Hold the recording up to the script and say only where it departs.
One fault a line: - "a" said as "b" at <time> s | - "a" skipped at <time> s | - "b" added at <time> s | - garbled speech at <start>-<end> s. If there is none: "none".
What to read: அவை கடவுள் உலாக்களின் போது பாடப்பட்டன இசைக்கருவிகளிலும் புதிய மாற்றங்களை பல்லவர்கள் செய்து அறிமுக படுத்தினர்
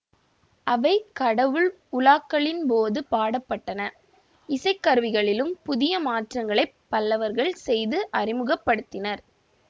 none